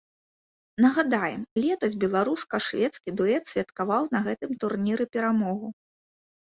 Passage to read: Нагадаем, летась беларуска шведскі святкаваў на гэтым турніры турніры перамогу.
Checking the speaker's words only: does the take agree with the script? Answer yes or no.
no